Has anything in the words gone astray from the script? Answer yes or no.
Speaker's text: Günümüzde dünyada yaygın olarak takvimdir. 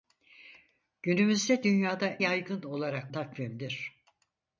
no